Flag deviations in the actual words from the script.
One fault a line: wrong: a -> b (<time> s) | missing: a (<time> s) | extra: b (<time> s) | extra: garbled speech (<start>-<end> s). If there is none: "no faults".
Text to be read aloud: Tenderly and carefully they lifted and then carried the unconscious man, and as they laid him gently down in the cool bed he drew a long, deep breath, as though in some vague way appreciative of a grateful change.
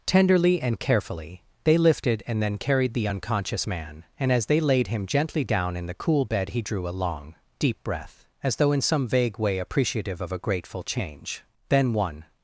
extra: Then one (11.7 s)